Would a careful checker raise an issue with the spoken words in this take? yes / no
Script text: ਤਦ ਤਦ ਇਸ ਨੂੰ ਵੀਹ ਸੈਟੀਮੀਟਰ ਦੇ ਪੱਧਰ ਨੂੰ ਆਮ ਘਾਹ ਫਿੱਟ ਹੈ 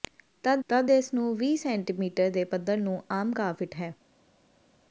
no